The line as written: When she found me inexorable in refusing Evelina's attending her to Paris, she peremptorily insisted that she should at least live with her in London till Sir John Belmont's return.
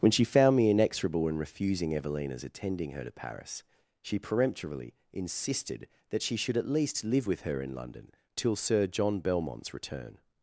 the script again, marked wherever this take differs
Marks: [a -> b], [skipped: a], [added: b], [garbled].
When she found me inexorable in refusing Evelina's attending her to Paris, she peremptorily insisted that she should at least live with her in London till Sir John Belmont's return.